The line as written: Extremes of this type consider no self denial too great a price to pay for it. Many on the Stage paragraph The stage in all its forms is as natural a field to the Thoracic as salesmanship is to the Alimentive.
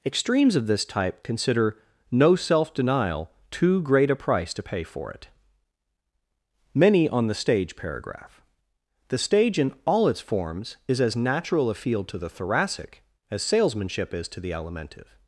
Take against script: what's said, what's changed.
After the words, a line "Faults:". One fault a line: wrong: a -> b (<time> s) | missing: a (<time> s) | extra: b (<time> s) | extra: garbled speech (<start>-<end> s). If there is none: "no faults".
Extremes of this type consider no self denial too great a price to pay for it. Many on the Stage paragraph The stage in all its forms is as natural a field to the Thoracic as salesmanship is to the Alimentive.
Faults:
no faults